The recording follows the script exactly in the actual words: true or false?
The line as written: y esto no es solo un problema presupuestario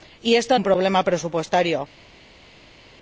false